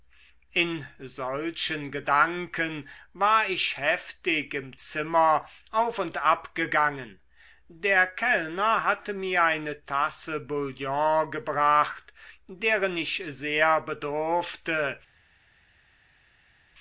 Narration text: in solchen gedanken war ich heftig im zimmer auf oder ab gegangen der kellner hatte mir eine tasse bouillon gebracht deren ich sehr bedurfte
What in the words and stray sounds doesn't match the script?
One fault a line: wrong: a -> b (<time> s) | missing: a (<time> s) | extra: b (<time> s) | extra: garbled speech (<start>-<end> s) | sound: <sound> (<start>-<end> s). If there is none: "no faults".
wrong: oder -> und (6.0 s)